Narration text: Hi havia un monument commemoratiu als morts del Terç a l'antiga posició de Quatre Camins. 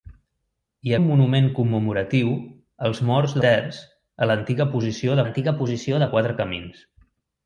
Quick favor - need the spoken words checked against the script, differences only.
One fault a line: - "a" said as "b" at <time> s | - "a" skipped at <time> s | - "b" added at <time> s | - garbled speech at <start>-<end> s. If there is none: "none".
- "havia" skipped at 0.9 s
- "del" skipped at 3.4 s
- "l'antiga posició" added at 5.2 s